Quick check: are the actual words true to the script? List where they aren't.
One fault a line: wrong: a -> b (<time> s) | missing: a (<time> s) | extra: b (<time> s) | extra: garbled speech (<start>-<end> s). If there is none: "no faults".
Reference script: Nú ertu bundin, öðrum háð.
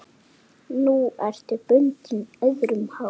no faults